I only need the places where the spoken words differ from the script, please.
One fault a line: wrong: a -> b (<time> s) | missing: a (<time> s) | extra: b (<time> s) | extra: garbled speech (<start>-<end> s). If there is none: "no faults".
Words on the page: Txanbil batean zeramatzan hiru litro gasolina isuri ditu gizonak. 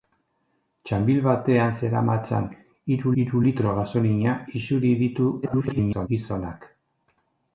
extra: hiru (3.2 s)
extra: garbled speech (5.4-6.1 s)